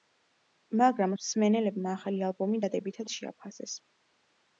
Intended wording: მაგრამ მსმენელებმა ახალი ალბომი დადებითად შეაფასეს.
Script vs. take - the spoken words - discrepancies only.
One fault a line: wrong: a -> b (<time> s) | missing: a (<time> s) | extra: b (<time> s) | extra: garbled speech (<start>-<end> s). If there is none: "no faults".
no faults